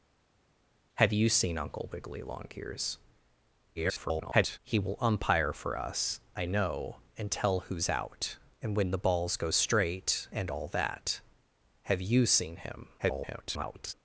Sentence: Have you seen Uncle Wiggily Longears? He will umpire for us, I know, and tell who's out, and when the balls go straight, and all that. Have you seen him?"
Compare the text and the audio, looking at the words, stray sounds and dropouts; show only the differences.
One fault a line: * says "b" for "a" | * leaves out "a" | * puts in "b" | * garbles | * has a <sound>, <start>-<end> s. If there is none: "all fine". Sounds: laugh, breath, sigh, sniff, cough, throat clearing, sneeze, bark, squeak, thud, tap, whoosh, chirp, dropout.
* garbles
* garbles